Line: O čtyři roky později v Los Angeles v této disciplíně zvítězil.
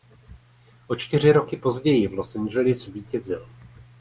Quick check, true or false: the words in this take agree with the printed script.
false